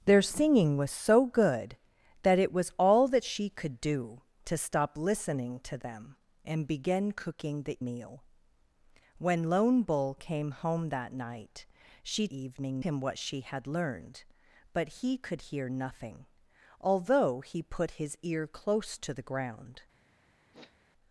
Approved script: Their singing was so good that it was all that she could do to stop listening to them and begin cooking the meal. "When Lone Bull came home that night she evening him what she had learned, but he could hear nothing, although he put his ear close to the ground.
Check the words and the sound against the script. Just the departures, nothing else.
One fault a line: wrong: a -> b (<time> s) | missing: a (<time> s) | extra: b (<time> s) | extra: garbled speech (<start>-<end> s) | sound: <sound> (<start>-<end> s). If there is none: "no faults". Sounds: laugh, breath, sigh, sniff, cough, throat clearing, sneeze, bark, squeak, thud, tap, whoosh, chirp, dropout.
sound: sniff (20.5-20.8 s)